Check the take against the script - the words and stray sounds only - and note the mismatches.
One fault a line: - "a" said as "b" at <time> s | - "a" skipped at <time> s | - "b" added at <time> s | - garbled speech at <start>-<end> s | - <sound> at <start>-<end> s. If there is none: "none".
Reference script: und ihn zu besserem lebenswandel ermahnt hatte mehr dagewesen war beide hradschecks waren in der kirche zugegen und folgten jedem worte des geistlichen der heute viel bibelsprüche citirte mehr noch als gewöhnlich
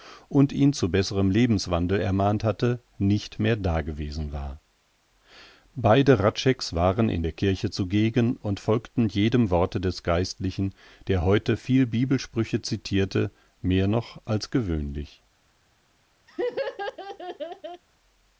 - "nicht" added at 3.0 s
- laugh at 16.3-17.8 s